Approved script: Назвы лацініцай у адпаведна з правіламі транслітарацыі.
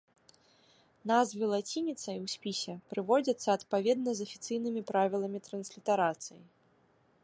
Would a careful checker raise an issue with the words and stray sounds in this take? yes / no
yes